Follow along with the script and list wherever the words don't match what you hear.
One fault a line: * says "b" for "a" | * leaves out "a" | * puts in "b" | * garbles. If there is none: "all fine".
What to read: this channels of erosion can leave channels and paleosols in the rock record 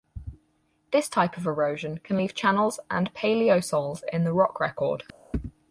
* says "type" for "channels"